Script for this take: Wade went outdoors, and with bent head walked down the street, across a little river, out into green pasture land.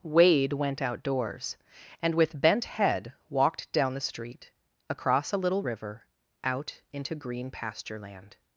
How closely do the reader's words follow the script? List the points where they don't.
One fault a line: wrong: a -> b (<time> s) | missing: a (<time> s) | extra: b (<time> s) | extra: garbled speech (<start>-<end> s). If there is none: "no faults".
no faults